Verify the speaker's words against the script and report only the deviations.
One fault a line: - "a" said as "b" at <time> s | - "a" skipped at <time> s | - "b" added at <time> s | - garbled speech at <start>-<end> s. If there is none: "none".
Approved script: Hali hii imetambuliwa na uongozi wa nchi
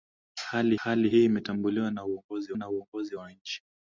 - "hali" added at 0.8 s
- "na uongozi" added at 2.6 s